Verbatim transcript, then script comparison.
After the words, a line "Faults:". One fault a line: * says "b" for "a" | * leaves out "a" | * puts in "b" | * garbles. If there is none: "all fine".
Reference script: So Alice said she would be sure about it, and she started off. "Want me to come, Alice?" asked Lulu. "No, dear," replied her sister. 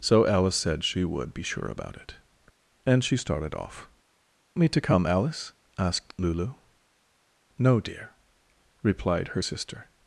So Alice said she would be sure about it, and she started off. "Me to come, Alice?" asked Lulu. "No, dear," replied her sister.
Faults:
* leaves out "Want"